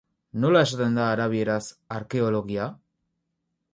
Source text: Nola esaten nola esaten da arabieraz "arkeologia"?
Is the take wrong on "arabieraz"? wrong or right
right